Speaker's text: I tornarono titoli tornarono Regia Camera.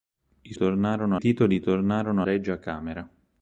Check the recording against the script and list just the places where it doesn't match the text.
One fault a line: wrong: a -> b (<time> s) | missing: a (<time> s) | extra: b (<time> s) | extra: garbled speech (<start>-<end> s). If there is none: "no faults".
no faults